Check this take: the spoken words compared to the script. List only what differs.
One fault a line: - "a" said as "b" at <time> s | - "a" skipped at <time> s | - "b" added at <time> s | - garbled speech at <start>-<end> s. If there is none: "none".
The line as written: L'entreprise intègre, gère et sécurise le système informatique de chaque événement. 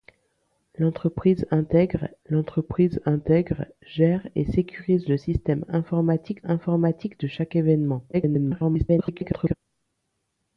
- "l'entreprise intègre" added at 2.3 s
- "informatique" added at 6.4 s
- garbled speech at 8.1-9.6 s